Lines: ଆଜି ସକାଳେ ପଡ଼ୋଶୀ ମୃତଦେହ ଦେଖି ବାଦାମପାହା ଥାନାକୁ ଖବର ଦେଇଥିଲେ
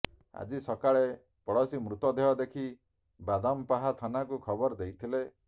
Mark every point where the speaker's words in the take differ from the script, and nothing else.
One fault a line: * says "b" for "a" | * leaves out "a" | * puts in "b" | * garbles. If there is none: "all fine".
all fine